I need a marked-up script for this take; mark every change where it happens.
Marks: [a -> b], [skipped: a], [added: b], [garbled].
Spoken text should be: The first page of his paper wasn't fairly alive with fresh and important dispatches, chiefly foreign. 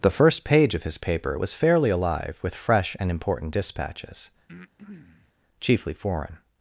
The first page of his paper [wasn't -> was] fairly alive with fresh and important dispatches, chiefly foreign.